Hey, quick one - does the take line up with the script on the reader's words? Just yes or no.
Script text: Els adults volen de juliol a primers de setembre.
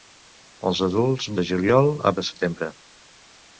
no